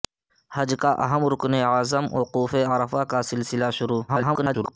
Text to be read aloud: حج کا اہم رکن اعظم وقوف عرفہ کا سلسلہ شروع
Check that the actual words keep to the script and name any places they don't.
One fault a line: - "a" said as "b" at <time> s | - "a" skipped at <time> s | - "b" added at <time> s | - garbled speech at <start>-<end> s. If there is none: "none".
- garbled speech at 4.1-4.7 s